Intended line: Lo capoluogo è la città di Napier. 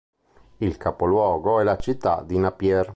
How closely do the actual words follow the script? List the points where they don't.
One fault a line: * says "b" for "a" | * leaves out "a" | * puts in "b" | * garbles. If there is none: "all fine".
* says "Il" for "Lo"